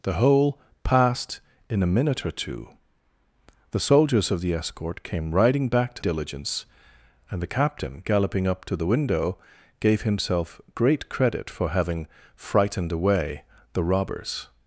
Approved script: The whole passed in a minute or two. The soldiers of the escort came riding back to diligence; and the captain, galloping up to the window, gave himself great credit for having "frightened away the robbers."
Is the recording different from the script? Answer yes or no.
no